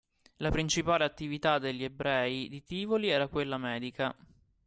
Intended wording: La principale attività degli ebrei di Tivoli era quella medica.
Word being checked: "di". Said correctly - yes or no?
yes